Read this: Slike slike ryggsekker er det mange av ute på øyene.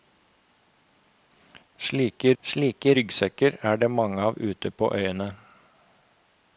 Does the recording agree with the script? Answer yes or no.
yes